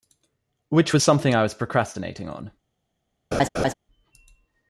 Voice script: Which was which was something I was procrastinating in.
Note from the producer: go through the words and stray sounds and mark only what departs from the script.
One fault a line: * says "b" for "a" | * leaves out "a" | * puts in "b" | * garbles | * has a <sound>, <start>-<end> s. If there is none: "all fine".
* leaves out "which was"
* says "on" for "in"
* has a laugh, 3.3-3.7 s